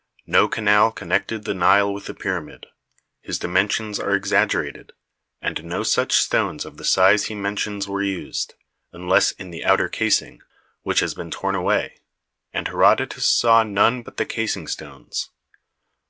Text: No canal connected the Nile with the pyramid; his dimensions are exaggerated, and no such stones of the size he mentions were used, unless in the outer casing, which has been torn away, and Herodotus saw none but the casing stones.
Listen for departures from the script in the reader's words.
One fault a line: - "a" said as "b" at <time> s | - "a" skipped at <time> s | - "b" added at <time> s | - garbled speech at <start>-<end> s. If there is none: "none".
none